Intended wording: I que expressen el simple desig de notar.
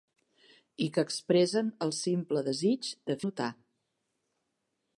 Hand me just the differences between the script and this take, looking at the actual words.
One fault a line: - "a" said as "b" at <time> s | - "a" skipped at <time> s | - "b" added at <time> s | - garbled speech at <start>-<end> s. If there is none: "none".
none